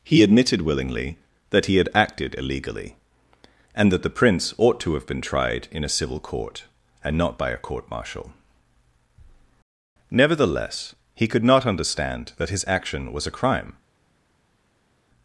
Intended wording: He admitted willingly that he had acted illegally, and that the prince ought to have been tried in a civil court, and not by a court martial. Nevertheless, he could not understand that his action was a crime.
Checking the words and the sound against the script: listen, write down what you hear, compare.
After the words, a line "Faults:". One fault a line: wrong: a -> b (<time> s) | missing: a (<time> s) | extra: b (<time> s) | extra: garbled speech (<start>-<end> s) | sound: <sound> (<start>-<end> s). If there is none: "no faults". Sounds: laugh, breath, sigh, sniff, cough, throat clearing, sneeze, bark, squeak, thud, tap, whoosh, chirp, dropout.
He admitted willingly that he had acted illegally, and that the prince ought to have been tried in a civil court, and not by a court martial. Nevertheless, he could not understand that his action was a crime.
Faults:
no faults